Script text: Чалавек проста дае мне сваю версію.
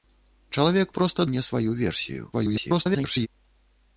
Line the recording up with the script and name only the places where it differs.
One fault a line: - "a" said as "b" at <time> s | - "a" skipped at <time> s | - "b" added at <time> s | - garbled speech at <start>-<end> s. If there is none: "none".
- "дае" skipped at 1.3 s
- garbled speech at 2.3-3.3 s